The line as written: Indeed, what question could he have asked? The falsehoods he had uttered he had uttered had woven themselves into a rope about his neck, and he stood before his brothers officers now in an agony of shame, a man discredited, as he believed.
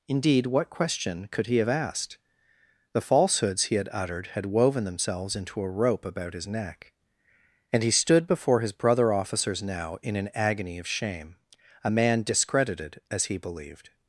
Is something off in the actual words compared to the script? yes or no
yes